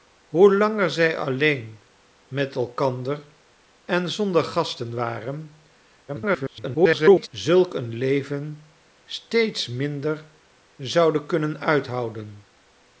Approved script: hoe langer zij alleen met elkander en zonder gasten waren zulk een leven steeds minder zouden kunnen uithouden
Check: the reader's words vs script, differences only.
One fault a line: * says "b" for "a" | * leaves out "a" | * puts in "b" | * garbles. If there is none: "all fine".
* garbles